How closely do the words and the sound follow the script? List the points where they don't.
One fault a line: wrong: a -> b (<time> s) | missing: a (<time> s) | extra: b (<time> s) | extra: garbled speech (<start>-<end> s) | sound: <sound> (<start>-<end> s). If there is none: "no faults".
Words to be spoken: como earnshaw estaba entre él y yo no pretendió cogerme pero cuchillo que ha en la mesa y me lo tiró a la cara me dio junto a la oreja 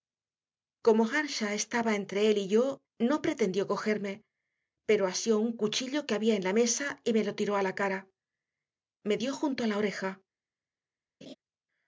extra: asió un (5.0 s)
wrong: ha -> había (6.2 s)
sound: laugh (11.2-11.3 s)